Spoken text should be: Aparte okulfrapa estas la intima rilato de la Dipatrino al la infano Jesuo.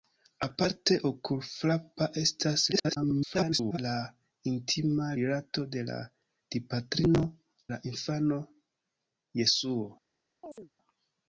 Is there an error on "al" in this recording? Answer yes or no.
yes